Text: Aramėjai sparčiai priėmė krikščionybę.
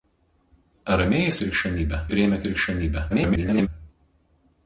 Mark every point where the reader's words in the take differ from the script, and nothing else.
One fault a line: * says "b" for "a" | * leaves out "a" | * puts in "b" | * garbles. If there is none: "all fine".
* says "krikščionybę" for "sparčiai"
* garbles